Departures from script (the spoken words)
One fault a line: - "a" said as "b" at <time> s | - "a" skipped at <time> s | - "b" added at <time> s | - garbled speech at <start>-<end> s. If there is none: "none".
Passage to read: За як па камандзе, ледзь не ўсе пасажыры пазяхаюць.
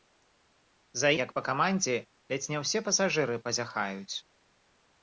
none